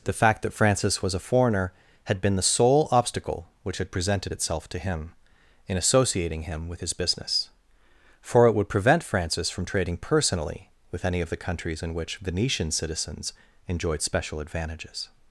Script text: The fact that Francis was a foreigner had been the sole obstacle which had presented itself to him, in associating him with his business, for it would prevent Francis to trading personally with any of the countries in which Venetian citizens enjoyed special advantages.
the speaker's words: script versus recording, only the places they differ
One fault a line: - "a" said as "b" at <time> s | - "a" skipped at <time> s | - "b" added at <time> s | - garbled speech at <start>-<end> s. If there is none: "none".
- "to" said as "from" at 9.5 s